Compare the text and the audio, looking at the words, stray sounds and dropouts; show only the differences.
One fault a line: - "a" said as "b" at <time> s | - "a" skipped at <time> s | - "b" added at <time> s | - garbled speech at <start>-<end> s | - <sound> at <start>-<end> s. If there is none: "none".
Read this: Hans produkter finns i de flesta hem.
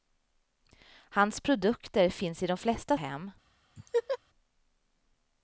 - laugh at 3.8-4.2 s